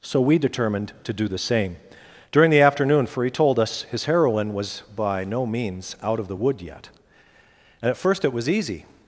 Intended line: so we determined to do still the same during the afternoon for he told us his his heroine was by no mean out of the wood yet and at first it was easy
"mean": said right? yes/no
no